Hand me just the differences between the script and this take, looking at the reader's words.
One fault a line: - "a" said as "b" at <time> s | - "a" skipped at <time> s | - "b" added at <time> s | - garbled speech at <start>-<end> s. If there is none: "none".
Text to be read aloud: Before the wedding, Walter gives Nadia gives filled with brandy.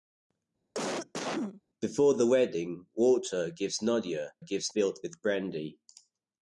none